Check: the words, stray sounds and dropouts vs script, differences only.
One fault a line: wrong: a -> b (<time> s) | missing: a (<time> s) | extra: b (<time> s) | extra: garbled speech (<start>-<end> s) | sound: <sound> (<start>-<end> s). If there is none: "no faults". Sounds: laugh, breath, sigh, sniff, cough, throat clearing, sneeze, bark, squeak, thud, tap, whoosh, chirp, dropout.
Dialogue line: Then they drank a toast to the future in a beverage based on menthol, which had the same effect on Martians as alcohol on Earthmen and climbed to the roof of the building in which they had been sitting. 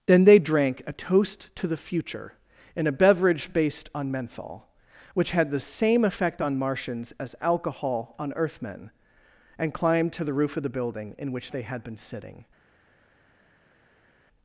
no faults